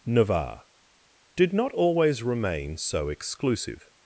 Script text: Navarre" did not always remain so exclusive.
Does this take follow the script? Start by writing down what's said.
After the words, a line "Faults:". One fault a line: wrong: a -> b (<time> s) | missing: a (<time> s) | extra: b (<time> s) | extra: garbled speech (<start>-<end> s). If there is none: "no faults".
Navarre" did not always remain so exclusive.
Faults:
no faults